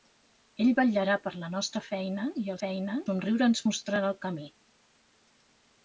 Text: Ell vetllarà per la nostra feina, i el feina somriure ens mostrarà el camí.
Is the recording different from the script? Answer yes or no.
no